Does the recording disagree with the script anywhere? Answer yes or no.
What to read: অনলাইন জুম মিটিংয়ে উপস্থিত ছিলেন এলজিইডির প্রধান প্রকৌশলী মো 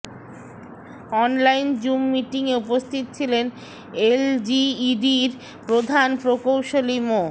no